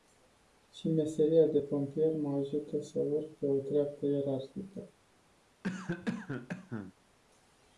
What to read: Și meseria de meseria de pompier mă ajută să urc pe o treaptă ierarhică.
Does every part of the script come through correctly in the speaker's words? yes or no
no